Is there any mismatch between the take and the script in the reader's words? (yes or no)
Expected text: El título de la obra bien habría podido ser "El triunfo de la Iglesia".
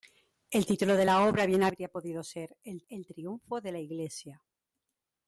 yes